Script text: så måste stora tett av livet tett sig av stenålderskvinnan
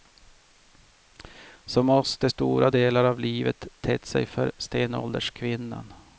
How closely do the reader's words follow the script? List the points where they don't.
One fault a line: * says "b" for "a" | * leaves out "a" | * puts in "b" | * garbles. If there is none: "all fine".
* says "delar" for "tett"
* says "för" for "av"